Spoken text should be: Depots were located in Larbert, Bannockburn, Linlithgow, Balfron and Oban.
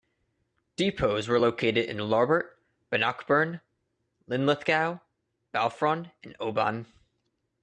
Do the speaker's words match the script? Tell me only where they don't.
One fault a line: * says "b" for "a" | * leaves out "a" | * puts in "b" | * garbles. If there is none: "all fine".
all fine